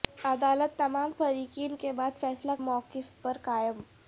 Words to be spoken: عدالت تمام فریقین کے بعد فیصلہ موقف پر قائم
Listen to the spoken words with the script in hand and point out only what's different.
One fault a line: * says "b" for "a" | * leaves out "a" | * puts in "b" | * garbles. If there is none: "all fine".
all fine